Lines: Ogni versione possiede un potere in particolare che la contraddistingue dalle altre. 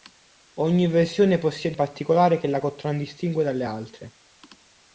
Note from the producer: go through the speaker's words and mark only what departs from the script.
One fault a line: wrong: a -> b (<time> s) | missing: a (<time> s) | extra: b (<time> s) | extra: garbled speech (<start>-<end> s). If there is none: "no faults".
missing: un potere in (1.8 s)